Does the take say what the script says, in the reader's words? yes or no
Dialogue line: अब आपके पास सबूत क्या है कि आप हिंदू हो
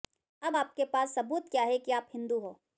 yes